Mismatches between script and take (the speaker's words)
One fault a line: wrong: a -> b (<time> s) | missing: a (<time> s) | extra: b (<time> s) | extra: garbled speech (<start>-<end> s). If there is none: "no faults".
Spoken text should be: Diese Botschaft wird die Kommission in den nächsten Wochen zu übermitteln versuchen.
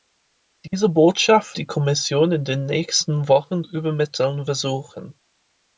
missing: wird (1.6 s)
missing: zu (3.6 s)